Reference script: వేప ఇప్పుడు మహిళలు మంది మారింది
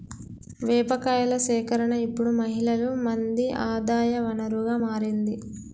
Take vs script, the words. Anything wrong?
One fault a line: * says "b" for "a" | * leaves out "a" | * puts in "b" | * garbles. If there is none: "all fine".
* puts in "కాయల సేకరణ"
* puts in "ఆదాయ వనరుగా"